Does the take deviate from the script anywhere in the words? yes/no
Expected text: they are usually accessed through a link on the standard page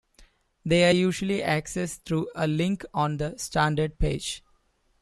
no